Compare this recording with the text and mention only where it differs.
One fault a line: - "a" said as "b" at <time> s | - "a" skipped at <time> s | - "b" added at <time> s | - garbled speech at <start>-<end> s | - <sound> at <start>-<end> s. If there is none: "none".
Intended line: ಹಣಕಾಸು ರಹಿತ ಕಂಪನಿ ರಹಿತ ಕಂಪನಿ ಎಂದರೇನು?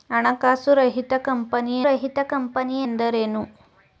none